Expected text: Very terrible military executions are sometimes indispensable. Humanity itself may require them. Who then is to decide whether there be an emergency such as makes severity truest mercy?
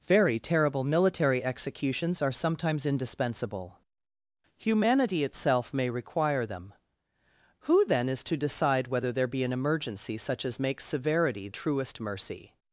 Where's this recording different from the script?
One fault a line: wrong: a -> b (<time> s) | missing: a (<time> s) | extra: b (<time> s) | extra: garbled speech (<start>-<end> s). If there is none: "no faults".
no faults